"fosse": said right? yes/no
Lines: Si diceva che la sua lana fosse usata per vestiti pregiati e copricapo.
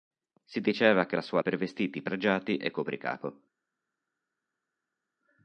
no